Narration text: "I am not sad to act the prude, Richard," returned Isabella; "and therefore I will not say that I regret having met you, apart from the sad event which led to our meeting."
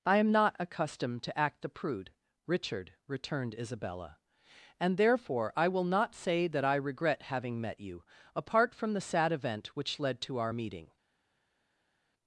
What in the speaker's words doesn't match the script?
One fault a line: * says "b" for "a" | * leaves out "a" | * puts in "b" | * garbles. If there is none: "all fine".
* says "accustomed" for "sad"